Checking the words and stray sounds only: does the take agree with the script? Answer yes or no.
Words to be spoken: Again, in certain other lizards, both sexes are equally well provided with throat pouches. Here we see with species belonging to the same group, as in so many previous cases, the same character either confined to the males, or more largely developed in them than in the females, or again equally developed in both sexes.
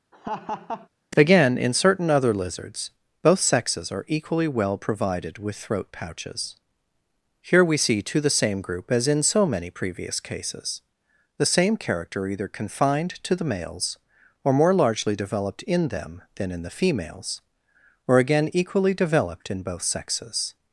no